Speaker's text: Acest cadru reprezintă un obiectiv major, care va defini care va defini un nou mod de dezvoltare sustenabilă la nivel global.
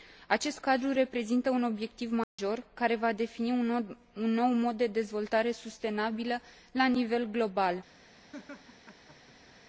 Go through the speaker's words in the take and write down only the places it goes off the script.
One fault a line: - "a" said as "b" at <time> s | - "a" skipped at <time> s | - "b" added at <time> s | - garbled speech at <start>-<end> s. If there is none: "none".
- "care va defini" skipped at 3.5 s